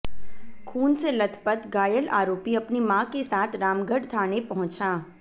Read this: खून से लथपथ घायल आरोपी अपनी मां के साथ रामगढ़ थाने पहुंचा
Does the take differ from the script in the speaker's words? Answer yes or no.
no